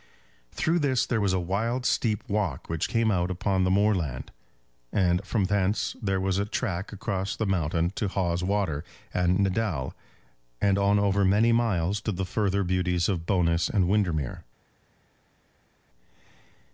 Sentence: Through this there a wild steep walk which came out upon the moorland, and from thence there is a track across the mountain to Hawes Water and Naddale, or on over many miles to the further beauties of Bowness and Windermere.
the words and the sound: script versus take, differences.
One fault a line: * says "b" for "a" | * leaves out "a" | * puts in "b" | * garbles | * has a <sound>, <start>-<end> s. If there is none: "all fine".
* puts in "was"
* says "was" for "is"
* says "and" for "or"